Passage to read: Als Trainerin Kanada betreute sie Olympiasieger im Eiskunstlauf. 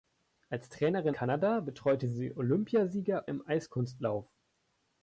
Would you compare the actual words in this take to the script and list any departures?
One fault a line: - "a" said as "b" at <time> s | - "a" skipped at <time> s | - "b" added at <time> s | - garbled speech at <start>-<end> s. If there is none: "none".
none